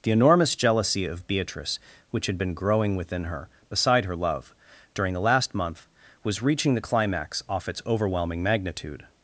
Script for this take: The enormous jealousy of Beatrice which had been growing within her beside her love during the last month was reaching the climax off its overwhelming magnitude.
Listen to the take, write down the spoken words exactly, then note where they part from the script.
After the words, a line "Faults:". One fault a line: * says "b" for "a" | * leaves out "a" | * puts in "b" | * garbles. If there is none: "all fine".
The enormous jealousy of Beatrice which had been growing within her beside her love during the last month was reaching the climax off its overwhelming magnitude.
Faults:
all fine